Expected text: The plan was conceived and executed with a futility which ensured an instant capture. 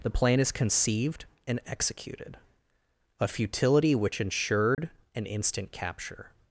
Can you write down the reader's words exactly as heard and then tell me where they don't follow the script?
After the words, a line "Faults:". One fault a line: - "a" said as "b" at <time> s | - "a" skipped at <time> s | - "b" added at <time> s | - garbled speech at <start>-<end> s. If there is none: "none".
The plan is conceived and executed a futility which ensured an instant capture.
Faults:
- "was" said as "is" at 0.4 s
- "with" skipped at 2.4 s